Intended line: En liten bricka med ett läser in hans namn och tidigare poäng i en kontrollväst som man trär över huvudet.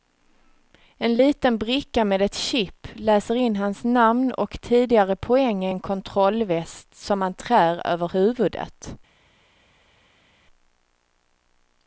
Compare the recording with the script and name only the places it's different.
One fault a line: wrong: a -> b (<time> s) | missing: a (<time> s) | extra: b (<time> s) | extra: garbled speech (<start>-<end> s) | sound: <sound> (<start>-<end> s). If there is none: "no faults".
extra: chip (2.3 s)